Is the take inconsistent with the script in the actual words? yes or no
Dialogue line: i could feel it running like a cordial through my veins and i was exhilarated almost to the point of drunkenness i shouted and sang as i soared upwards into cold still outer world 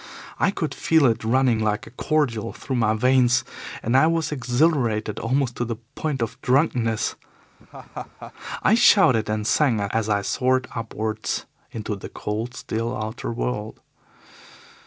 yes